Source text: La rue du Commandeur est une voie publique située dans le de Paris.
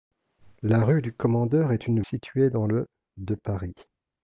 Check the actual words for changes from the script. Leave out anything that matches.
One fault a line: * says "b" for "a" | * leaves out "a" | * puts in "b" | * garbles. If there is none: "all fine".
* leaves out "voie publique"